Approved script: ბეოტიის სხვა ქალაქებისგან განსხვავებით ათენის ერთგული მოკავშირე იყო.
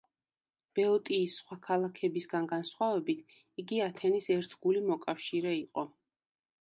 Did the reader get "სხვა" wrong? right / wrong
right